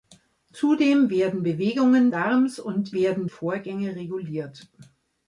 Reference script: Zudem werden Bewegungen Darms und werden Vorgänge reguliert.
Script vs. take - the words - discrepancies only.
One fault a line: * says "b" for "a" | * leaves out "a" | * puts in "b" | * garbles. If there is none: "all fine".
all fine